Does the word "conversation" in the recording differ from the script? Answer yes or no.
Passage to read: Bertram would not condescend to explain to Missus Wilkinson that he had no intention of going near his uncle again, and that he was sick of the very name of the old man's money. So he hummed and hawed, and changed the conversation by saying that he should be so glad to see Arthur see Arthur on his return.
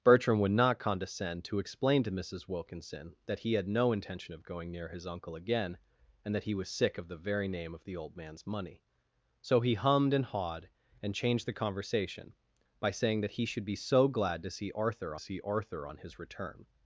no